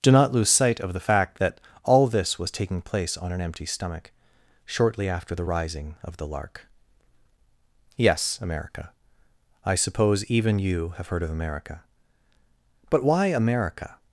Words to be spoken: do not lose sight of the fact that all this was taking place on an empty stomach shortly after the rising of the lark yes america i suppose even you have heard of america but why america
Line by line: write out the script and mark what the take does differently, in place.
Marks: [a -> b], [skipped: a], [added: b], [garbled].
do not lose sight of the fact that all this was taking place on an empty stomach shortly after the rising of the lark yes america i suppose even you have heard of america but why america